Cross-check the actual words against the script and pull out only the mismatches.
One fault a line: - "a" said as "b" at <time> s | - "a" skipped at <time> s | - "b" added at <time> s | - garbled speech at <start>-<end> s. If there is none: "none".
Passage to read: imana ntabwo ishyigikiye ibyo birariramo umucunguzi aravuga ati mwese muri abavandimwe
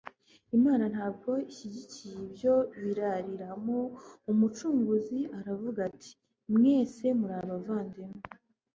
none